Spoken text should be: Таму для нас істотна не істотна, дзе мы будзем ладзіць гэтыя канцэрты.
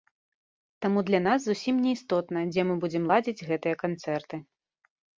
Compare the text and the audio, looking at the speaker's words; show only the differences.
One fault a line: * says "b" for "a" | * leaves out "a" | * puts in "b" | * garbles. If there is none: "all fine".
* says "зусім" for "істотна"